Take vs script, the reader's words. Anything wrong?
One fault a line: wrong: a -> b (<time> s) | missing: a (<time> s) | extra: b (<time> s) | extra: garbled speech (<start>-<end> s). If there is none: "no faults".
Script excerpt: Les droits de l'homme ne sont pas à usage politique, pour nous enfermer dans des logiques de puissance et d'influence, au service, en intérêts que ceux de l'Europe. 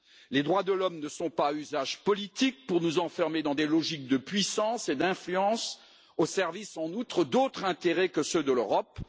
extra: outre d'autres (6.9 s)